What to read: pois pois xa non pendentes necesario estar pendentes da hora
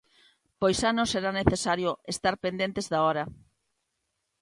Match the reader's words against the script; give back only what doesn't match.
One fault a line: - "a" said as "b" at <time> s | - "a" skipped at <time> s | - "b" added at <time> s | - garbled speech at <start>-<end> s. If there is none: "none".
- "pois" skipped at 0.8 s
- "pendentes" said as "será" at 1.1 s